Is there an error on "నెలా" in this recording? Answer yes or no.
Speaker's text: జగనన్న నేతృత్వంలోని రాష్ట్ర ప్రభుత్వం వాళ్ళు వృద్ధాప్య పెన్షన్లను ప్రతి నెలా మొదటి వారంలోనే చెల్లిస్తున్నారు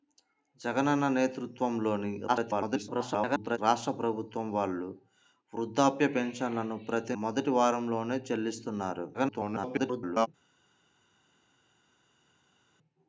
yes